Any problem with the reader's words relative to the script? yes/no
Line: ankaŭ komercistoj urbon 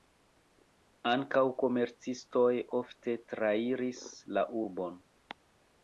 yes